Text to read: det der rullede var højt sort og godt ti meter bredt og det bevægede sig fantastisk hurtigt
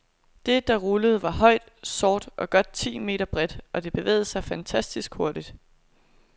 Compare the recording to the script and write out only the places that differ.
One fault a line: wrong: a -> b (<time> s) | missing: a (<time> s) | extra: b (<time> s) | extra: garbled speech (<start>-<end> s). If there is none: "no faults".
no faults